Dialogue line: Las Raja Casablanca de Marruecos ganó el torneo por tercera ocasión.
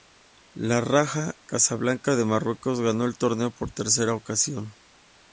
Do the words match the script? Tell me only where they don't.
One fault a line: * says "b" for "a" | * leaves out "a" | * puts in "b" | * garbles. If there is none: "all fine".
* says "El" for "Las"